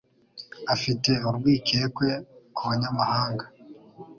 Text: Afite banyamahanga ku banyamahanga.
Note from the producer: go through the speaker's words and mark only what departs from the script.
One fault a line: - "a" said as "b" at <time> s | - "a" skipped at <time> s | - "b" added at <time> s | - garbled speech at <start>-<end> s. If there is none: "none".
- "banyamahanga" said as "urwikekwe" at 1.3 s